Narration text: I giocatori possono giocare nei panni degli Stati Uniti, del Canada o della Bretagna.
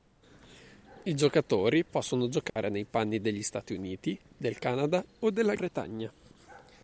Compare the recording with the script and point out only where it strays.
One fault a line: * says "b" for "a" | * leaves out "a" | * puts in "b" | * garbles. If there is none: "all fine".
all fine